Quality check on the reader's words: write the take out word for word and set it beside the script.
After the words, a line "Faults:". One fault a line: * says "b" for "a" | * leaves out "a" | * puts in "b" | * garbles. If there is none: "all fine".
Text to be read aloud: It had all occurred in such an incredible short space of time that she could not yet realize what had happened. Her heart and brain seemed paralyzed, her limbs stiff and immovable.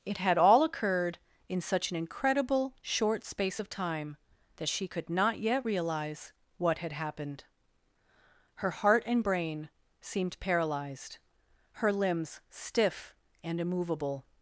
It had all occurred in such an incredible short space of time that she could not yet realize what had happened. Her heart and brain seemed paralyzed, her limbs stiff and immovable.
Faults:
all fine